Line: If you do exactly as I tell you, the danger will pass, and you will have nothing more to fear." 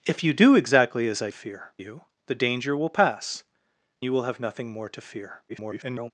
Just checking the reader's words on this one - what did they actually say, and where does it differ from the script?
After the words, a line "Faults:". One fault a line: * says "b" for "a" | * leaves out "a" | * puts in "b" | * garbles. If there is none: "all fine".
If you do exactly as I fear you, the danger will pass, you will have nothing more to fear." [garbled]
Faults:
* says "fear" for "tell"
* leaves out "and"
* garbles